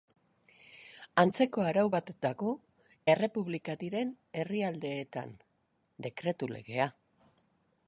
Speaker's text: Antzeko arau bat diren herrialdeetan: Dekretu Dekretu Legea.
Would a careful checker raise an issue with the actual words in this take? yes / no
yes